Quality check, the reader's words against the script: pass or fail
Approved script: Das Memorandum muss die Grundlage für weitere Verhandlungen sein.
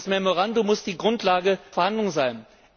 fail